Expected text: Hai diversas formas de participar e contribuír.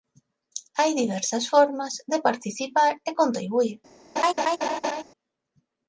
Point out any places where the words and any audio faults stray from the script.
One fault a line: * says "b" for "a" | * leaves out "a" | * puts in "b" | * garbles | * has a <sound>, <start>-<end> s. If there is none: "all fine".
* has a laugh, 4.2-5.0 s